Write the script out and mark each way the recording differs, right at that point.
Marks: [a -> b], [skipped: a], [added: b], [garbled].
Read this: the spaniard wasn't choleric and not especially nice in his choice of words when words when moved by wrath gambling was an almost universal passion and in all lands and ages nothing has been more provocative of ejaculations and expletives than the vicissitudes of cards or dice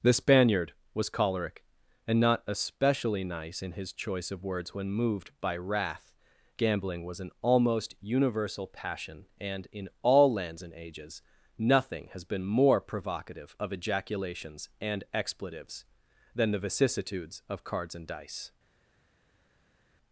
the spaniard [wasn't -> was] choleric and not especially nice in his choice of words when [skipped: words when] moved by wrath gambling was an almost universal passion and in all lands and ages nothing has been more provocative of ejaculations and expletives than the vicissitudes of cards [or -> and] dice